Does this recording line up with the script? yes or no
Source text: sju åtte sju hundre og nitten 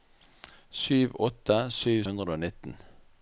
yes